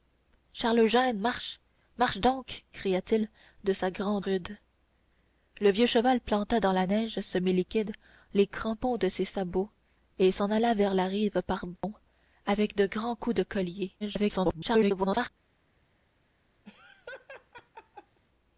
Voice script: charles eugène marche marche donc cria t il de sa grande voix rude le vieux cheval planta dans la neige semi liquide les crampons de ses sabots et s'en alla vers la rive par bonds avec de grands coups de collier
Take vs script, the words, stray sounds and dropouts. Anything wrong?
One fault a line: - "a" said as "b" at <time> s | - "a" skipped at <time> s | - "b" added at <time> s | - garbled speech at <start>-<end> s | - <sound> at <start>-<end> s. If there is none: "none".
- "voix" skipped at 4.2 s
- dropout at 11.8-11.8 s
- garbled speech at 14.0-15.3 s
- laugh at 16.7-18.2 s